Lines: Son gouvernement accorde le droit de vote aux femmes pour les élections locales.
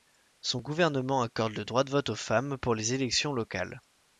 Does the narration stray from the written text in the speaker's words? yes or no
no